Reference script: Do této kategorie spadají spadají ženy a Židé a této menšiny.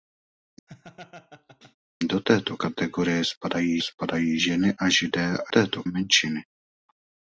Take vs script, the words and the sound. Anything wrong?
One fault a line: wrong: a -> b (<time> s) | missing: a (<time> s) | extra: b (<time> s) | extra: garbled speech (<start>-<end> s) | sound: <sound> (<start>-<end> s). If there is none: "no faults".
sound: laugh (0.7-1.8 s)